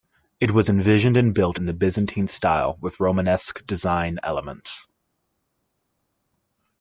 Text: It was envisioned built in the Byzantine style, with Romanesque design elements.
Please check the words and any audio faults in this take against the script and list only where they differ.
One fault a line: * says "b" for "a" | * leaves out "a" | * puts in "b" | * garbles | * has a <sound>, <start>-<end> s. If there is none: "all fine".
* puts in "and"